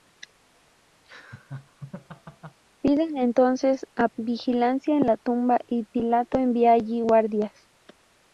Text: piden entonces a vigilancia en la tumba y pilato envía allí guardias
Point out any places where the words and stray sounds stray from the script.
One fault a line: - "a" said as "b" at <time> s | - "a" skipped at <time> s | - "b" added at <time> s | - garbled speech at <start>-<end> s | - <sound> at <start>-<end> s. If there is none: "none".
- laugh at 1.0-2.6 s